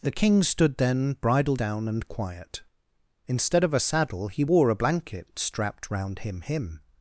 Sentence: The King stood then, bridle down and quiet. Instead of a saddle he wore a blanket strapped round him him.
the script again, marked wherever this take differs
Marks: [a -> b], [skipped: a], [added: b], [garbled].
The King stood then, bridle down and quiet. Instead of a saddle he wore a blanket strapped round him him.